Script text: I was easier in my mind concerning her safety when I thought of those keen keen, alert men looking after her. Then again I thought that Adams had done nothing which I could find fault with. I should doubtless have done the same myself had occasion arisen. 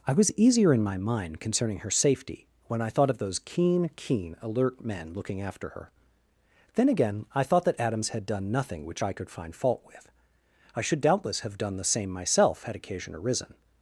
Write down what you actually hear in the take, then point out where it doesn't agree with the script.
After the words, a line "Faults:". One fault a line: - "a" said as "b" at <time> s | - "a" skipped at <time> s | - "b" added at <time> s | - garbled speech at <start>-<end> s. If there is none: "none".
I was easier in my mind concerning her safety when I thought of those keen keen, alert men looking after her. Then again I thought that Adams had done nothing which I could find fault with. I should doubtless have done the same myself had occasion arisen.
Faults:
none